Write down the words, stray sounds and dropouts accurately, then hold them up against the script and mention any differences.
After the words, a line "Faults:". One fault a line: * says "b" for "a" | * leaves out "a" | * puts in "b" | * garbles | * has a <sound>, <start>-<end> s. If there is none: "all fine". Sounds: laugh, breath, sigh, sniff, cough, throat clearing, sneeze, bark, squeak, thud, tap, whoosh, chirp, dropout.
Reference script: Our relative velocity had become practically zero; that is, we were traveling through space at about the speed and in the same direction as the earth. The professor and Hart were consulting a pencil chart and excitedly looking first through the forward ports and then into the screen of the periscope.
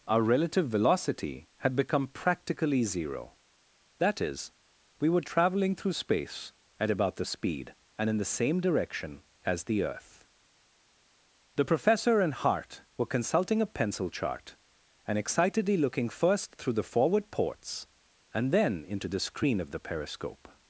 Our relative velocity had become practically zero; that is, we were traveling through space at about the speed and in the same direction as the earth. The professor and Hart were consulting a pencil chart and excitedly looking first through the forward ports and then into the screen of the periscope.
Faults:
all fine